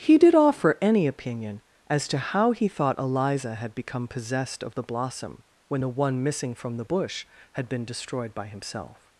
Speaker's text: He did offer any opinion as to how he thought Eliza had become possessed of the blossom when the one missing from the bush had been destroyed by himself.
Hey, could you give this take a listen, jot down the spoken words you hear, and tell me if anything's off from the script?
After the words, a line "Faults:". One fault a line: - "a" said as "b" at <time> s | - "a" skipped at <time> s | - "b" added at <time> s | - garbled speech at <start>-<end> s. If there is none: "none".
He did offer any opinion as to how he thought Eliza had become possessed of the blossom when the one missing from the bush had been destroyed by himself.
Faults:
none